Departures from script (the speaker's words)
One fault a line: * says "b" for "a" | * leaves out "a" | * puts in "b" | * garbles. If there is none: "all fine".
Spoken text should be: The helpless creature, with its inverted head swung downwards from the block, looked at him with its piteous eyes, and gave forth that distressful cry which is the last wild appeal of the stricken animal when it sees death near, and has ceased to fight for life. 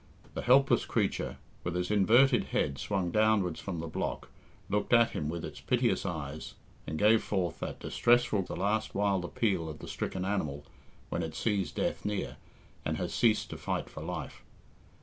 * leaves out "cry which is"